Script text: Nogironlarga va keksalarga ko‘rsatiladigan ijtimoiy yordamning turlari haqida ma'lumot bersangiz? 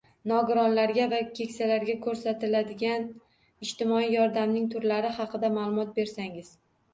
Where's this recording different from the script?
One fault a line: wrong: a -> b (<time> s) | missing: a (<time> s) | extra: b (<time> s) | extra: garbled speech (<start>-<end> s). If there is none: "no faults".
no faults